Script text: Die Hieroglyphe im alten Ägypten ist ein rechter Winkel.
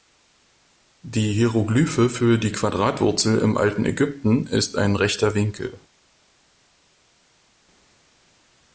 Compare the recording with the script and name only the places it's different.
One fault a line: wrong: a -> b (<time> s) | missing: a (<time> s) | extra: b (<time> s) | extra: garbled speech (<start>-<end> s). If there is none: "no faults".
extra: für die Quadratwurzel (2.1 s)